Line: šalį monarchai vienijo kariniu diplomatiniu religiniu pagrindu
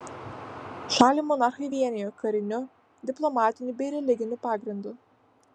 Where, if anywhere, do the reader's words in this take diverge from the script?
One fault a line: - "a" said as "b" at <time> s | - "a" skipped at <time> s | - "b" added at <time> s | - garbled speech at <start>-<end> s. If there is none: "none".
- "bei" added at 3.8 s